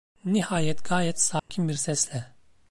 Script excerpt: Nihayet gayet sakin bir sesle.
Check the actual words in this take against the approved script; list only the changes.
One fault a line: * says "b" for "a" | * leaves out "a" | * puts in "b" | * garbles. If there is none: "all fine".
all fine